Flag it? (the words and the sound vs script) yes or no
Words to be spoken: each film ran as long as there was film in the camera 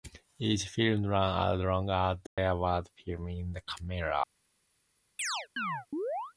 yes